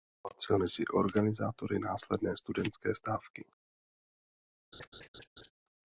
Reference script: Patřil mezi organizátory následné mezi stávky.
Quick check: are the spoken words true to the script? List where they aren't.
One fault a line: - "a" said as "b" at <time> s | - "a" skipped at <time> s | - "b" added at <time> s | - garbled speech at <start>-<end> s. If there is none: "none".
- "mezi" said as "studentské" at 2.4 s